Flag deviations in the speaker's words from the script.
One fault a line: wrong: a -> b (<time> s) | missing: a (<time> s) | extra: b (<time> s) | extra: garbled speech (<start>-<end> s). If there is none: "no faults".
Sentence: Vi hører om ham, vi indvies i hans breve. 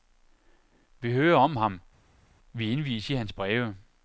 no faults